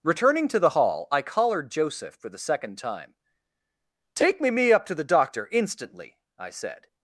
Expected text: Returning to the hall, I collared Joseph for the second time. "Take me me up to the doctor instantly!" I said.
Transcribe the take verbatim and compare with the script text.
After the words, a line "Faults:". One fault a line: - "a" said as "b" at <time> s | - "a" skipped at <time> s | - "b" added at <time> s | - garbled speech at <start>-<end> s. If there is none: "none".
Returning to the hall, I collared Joseph for the second time. "Take me me up to the doctor instantly!" I said.
Faults:
none